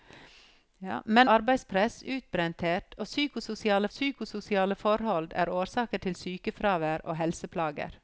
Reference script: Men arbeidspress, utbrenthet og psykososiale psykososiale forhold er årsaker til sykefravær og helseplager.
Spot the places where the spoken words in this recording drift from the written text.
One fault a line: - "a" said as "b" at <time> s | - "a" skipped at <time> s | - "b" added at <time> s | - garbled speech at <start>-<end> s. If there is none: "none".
none